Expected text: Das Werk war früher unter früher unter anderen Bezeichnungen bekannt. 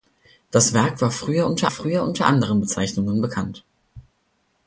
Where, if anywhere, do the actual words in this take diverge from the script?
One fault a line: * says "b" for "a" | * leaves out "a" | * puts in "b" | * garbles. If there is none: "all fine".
all fine